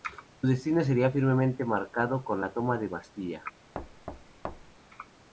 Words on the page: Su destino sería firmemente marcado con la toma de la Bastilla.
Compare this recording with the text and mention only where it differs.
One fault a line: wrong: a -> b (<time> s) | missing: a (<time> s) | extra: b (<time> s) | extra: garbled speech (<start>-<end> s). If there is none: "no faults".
no faults